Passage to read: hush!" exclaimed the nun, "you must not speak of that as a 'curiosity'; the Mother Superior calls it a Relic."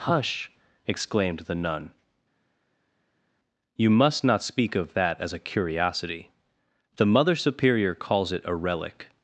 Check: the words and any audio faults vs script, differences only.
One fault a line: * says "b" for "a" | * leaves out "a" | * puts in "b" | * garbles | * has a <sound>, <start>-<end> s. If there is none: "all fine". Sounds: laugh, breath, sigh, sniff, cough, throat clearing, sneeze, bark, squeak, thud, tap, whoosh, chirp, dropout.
all fine